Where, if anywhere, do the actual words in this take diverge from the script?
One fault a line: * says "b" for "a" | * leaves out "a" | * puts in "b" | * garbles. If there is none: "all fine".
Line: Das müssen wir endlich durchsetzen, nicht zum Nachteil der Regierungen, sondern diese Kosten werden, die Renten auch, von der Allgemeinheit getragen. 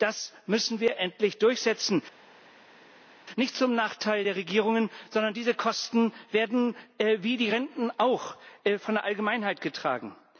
* puts in "wie"